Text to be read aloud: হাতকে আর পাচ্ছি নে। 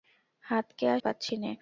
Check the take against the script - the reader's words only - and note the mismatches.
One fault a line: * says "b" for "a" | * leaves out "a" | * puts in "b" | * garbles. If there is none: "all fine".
all fine